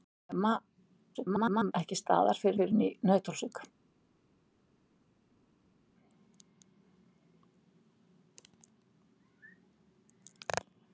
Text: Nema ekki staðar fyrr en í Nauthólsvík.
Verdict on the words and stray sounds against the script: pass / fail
fail